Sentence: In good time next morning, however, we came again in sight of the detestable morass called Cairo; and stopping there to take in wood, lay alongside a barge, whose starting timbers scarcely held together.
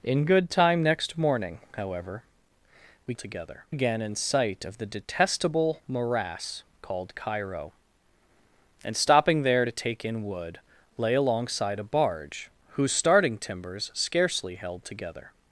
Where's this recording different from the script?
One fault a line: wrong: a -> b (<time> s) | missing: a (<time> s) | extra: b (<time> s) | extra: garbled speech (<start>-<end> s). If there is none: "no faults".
wrong: came -> together (3.2 s)